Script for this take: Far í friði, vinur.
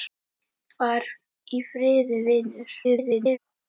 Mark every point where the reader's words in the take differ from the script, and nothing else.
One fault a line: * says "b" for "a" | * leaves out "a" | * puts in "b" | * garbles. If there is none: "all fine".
* garbles